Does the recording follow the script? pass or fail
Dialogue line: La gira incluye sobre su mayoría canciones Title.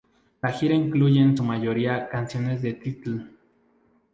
fail